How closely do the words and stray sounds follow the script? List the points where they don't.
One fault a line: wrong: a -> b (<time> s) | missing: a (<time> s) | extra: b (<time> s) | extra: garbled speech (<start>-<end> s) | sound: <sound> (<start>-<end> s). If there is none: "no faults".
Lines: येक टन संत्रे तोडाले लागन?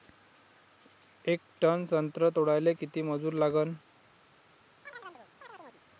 extra: किती मजूर (2.7 s)
sound: chirp (4.9-5.8 s)